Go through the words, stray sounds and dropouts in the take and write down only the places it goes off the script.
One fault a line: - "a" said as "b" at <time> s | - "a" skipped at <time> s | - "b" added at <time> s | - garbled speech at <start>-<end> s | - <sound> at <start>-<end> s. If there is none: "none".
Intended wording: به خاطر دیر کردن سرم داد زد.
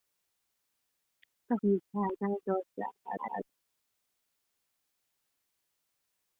- "خاطر" skipped at 1.6 s
- "سرم" skipped at 2.4 s
- garbled speech at 3.0-3.5 s